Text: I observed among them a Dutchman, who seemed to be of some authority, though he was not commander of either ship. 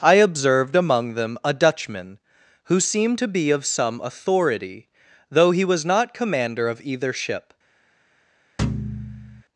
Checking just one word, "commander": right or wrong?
right